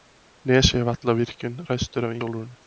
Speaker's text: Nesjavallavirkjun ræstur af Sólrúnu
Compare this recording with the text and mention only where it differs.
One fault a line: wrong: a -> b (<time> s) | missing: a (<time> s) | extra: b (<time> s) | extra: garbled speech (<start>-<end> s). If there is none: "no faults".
no faults